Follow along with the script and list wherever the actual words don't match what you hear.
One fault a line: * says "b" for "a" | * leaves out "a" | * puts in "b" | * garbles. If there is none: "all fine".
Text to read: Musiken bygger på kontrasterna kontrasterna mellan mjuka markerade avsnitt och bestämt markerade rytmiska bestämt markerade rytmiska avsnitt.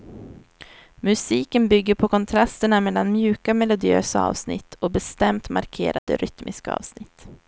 * leaves out "kontrasterna"
* says "melodiösa" for "markerade"
* leaves out "bestämt markerade rytmiska"